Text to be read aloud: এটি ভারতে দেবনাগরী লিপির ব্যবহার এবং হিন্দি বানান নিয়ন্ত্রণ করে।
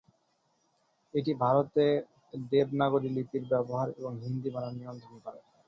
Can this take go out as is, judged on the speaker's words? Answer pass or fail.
pass